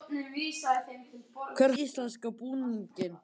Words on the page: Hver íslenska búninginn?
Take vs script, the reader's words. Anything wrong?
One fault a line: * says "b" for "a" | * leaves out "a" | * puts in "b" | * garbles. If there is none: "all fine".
all fine